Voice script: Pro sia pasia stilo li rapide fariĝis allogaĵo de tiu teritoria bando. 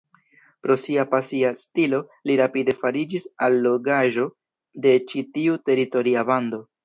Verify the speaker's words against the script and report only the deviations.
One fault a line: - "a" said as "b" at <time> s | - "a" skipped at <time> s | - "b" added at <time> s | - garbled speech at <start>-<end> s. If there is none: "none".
- "ĉi" added at 5.1 s